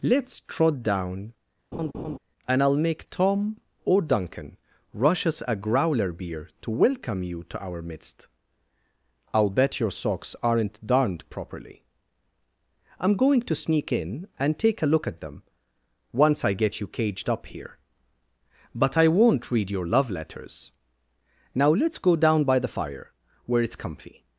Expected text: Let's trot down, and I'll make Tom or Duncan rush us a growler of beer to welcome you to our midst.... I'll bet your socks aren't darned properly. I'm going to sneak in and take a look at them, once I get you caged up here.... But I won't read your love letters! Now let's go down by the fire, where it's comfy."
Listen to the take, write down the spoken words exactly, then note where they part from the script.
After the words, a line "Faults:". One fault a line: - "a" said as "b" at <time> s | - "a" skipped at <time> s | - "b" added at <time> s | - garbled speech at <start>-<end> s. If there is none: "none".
Let's trot down, and I'll make Tom or Duncan rush us a growler beer to welcome you to our midst.... I'll bet your socks aren't darned properly. I'm going to sneak in and take a look at them, once I get you caged up here.... But I won't read your love letters! Now let's go down by the fire, where it's comfy."
Faults:
- "of" skipped at 6.1 s